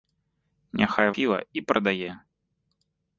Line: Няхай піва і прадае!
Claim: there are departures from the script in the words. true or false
false